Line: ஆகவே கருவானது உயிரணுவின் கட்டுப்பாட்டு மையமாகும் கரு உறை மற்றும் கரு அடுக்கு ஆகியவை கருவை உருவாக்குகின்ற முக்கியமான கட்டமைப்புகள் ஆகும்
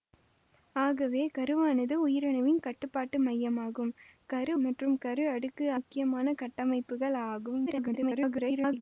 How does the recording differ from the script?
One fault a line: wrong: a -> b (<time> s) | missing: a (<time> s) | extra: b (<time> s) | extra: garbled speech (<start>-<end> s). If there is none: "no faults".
missing: உறை (4.5 s)
missing: ஆகியவை கருவை உருவாக்குகின்ற (5.7 s)
extra: garbled speech (7.7-8.8 s)